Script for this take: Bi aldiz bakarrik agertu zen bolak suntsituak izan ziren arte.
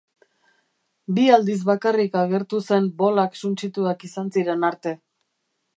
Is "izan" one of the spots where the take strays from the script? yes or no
no